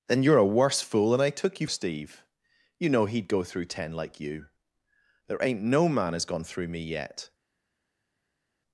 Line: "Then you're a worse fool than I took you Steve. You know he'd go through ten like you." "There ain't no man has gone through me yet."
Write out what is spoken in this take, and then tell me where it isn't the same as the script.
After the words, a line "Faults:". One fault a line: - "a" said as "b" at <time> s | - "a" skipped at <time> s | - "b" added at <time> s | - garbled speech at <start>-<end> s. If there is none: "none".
"Then you're a worse fool than I took you Steve. You know he'd go through ten like you." "There ain't no man has gone through me yet."
Faults:
none